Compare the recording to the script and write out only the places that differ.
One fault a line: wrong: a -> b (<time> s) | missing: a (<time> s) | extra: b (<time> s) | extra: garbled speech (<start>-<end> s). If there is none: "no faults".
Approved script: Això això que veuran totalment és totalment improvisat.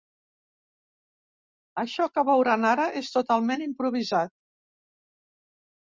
missing: això (2.1 s)
wrong: totalment -> ara (2.7 s)